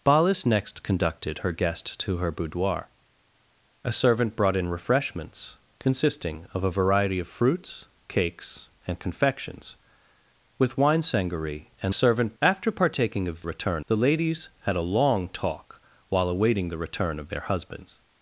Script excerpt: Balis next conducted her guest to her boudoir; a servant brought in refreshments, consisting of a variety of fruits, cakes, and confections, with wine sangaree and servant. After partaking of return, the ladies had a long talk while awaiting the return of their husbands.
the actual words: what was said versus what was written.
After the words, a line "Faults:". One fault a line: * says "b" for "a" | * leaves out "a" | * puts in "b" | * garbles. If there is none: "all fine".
Balis next conducted her guest to her boudoir; a servant brought in refreshments, consisting of a variety of fruits, cakes, and confections, with wine sangaree and servant. After partaking of return, the ladies had a long talk while awaiting the return of their husbands.
Faults:
all fine